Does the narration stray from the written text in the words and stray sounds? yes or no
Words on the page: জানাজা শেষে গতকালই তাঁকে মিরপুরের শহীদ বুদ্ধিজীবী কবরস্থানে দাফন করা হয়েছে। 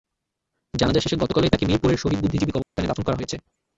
yes